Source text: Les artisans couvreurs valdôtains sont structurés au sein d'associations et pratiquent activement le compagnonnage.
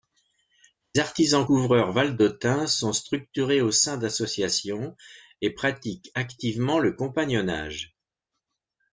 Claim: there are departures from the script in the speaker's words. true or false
false